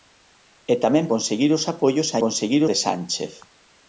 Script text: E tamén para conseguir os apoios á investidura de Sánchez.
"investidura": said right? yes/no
no